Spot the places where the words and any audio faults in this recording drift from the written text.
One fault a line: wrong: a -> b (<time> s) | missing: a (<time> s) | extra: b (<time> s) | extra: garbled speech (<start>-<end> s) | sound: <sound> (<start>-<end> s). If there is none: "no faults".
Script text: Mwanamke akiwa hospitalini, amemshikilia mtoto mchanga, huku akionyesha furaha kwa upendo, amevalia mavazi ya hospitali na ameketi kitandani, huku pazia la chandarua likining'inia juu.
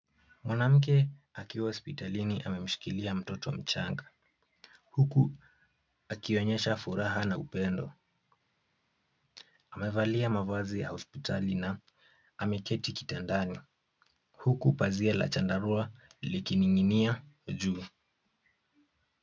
wrong: kwa -> na (7.2 s)